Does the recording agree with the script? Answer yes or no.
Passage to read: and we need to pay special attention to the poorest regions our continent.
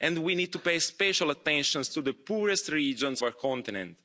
yes